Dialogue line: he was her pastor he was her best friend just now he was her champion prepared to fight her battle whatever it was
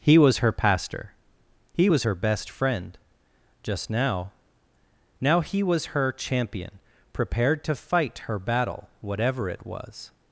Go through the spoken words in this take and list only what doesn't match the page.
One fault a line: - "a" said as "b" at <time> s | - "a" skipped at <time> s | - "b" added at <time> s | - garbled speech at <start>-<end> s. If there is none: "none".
- "now" added at 5.2 s